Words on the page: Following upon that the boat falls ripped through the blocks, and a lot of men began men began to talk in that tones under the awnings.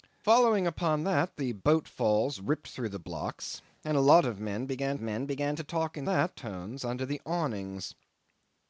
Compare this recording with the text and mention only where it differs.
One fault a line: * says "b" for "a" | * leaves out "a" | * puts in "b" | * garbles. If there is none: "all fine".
all fine